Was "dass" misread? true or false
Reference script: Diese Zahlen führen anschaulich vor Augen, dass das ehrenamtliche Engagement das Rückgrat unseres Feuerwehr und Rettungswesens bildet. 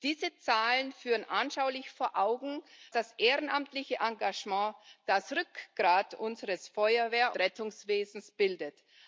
true